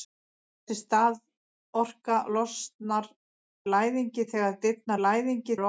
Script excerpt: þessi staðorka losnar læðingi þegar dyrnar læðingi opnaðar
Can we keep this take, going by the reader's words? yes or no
yes